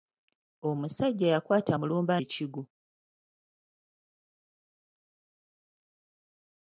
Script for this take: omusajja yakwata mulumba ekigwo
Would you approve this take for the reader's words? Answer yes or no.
yes